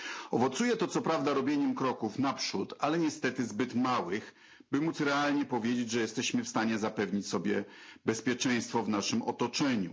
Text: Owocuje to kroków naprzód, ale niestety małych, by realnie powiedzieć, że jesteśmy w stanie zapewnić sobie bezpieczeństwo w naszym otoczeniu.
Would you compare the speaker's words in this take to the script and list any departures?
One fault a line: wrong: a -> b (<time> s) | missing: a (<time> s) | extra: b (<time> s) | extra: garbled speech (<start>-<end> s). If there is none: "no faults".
extra: co prawda robieniem (0.9 s)
extra: zbyt (3.5 s)
extra: móc (4.8 s)